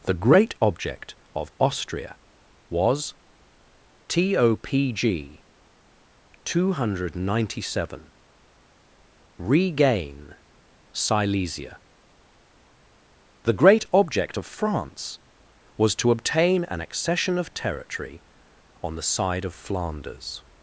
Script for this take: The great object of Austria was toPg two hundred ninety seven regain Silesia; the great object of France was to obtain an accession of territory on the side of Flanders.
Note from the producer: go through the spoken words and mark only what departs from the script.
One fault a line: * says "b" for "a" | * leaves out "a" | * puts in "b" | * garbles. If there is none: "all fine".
all fine